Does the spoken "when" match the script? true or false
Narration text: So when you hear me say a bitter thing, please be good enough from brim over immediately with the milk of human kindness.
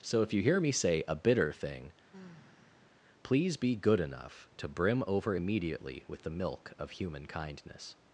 false